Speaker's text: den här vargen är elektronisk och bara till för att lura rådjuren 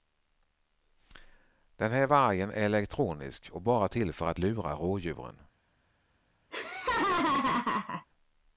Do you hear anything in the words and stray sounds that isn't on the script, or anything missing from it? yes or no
yes